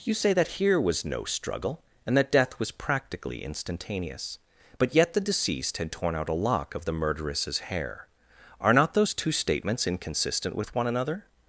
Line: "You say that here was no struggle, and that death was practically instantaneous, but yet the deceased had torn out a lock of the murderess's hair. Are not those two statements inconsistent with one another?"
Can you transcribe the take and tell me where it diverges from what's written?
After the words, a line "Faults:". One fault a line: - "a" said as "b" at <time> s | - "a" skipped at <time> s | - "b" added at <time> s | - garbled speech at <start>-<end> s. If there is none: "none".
"You say that here was no struggle, and that death was practically instantaneous, but yet the deceased had torn out a lock of the murderess's hair. Are not those two statements inconsistent with one another?"
Faults:
none